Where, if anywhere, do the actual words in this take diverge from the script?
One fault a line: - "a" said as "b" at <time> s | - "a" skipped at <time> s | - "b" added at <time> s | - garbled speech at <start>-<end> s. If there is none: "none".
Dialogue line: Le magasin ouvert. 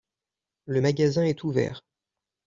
- "est" added at 1.2 s